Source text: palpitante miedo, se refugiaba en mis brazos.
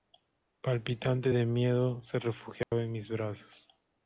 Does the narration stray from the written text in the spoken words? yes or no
yes